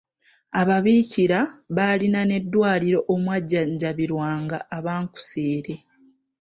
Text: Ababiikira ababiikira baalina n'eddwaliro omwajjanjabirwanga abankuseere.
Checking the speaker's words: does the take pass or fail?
fail